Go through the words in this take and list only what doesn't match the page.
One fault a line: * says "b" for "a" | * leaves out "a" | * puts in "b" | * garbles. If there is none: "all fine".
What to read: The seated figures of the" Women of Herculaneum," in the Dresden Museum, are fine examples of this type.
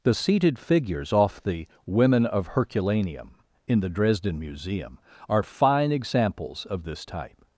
* says "off" for "of"